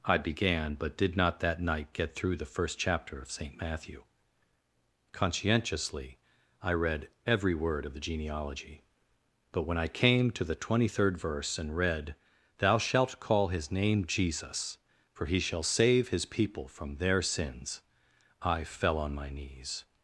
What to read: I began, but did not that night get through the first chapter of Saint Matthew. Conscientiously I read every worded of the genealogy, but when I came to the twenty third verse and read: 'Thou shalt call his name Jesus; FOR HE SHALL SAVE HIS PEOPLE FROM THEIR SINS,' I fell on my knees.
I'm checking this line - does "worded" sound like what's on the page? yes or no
no